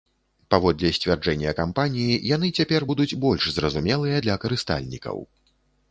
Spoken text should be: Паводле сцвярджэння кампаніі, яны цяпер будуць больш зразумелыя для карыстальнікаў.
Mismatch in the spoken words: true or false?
false